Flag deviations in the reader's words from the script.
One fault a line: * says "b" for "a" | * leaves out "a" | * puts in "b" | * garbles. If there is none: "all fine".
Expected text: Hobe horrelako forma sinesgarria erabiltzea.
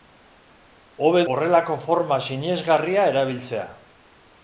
all fine